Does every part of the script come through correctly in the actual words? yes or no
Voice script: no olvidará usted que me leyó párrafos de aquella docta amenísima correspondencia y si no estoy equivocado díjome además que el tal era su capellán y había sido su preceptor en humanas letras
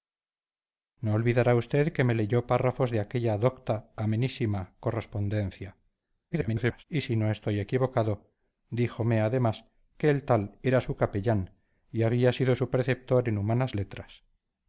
no